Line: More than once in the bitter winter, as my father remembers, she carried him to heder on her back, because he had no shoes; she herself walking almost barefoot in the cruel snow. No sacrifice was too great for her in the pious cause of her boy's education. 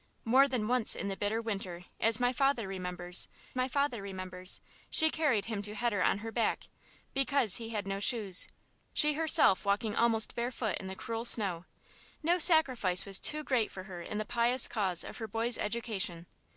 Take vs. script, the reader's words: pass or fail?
fail